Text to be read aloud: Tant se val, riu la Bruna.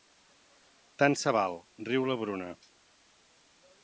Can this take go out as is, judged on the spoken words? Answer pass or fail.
pass